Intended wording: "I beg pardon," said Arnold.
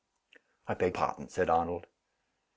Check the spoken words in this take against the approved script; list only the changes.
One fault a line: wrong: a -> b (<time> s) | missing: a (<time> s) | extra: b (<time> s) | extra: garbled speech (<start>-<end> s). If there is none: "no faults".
no faults